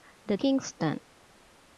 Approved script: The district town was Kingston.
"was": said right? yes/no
no